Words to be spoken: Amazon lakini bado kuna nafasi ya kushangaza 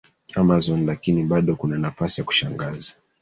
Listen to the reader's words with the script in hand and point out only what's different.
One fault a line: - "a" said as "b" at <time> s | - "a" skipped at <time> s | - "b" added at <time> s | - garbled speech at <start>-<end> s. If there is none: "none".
none